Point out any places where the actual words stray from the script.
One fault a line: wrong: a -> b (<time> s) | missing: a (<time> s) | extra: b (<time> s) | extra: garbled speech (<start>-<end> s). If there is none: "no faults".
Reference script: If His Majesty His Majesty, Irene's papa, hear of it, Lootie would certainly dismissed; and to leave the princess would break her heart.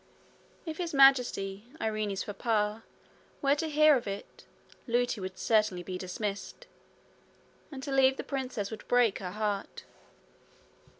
wrong: His Majesty Irene's papa -> Irene's papa were to (1.8 s)
extra: be (5.8 s)